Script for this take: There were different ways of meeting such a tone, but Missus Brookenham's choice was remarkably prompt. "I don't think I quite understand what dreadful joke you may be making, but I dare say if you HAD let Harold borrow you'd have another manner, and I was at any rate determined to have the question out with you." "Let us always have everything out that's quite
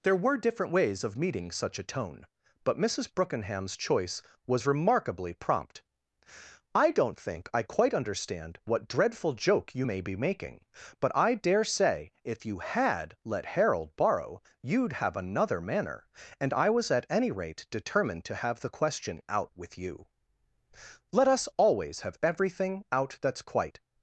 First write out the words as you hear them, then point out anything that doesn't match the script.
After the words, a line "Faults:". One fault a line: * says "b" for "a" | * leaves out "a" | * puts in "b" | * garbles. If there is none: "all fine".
There were different ways of meeting such a tone, but Missus Brookenham's choice was remarkably prompt. "I don't think I quite understand what dreadful joke you may be making, but I dare say if you HAD let Harold borrow you'd have another manner, and I was at any rate determined to have the question out with you." "Let us always have everything out that's quite
Faults:
all fine